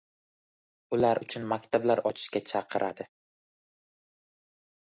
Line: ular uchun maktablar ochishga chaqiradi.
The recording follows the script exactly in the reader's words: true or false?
true